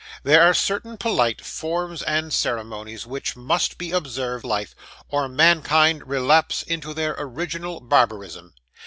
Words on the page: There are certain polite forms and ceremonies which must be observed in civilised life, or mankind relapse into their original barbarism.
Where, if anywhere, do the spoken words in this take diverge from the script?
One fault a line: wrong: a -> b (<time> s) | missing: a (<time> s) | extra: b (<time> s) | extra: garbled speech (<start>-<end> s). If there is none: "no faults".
missing: in civilised (4.5 s)